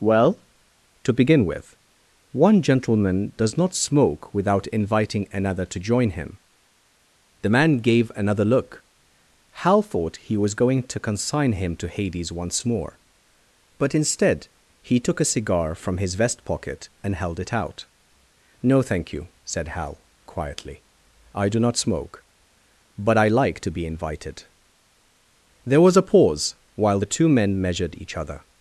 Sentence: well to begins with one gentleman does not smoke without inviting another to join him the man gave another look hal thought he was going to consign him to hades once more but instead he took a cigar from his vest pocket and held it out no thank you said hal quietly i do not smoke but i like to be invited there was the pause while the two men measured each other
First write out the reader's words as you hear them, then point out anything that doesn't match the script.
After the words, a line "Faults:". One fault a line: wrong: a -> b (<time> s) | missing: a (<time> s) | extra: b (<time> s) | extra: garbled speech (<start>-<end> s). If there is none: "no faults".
well to begin with one gentleman does not smoke without inviting another to join him the man gave another look hal thought he was going to consign him to hades once more but instead he took a cigar from his vest pocket and held it out no thank you said hal quietly i do not smoke but i like to be invited there was a pause while the two men measured each other
Faults:
wrong: begins -> begin (1.1 s)
wrong: the -> a (25.9 s)